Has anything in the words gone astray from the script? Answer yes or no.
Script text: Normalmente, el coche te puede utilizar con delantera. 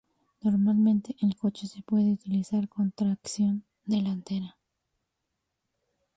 yes